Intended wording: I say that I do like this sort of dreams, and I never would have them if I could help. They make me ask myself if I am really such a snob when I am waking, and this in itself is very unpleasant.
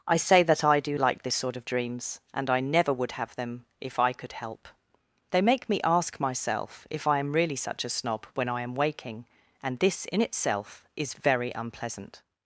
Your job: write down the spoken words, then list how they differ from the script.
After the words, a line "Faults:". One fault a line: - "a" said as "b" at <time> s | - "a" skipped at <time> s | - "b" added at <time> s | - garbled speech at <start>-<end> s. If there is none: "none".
I say that I do like this sort of dreams, and I never would have them if I could help. They make me ask myself if I am really such a snob when I am waking, and this in itself is very unpleasant.
Faults:
none